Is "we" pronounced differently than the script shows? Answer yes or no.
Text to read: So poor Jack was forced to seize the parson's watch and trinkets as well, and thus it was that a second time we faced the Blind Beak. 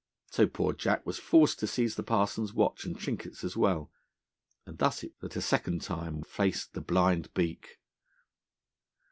yes